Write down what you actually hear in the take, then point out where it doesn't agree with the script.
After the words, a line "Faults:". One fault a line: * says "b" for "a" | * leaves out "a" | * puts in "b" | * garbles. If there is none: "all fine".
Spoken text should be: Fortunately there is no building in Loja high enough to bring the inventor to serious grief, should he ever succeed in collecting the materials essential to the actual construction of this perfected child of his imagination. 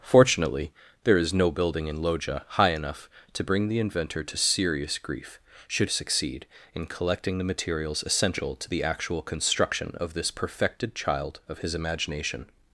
Fortunately there is no building in Loja high enough to bring the inventor to serious grief, should succeed in collecting the materials essential to the actual construction of this perfected child of his imagination.
Faults:
* leaves out "he ever"